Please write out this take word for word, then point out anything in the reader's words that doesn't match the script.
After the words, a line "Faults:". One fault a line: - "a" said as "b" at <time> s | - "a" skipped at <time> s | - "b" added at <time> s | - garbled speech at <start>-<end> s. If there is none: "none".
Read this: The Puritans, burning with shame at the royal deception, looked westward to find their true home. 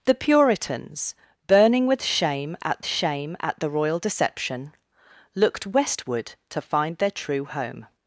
The Puritans, burning with shame at shame at the royal deception, looked westward to find their true home.
Faults:
- "shame at" added at 2.8 s